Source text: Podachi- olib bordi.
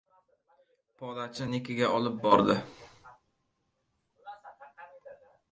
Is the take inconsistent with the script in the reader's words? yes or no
yes